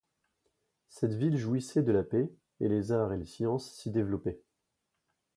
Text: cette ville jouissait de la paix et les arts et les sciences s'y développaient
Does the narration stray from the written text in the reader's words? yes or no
no